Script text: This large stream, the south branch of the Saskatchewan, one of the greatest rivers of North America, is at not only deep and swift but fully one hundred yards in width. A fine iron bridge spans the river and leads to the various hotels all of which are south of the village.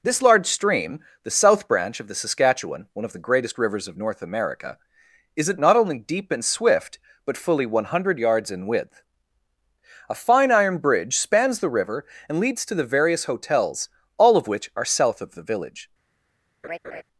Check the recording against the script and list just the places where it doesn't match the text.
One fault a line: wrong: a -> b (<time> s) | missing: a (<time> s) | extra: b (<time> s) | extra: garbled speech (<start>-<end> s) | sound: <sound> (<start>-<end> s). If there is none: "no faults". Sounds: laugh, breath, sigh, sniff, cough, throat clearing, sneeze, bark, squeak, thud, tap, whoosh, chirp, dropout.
sound: laugh (16.6-17.0 s)